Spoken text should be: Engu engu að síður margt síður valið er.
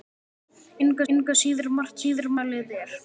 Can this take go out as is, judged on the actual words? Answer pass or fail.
pass